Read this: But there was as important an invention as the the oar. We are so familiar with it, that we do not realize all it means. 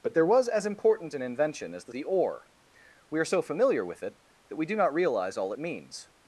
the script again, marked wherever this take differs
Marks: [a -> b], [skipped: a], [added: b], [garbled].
But there was as important an invention as the the oar. We are so familiar with it, that we do not realize all it means.